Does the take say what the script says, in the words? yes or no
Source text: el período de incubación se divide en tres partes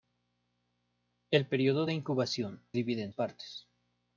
no